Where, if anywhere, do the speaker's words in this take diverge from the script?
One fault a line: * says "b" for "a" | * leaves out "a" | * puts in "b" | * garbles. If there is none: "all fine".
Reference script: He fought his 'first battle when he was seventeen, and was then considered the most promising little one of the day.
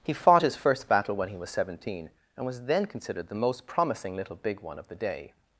* puts in "big"